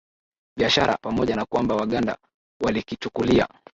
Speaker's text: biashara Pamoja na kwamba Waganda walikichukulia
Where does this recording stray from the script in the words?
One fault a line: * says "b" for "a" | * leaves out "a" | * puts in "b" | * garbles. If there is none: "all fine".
all fine